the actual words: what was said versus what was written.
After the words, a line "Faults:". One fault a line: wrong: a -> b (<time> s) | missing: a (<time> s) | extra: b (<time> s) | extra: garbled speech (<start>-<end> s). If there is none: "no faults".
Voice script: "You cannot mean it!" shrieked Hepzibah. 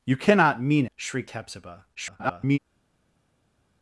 "You cannot mean!" shrieked Hepzibah. [garbled]
Faults:
missing: it (0.8 s)
extra: garbled speech (1.9-2.6 s)